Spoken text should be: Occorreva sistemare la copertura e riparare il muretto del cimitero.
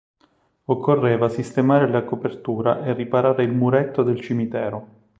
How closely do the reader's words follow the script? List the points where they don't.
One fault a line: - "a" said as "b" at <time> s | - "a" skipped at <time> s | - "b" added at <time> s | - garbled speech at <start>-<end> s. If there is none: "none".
none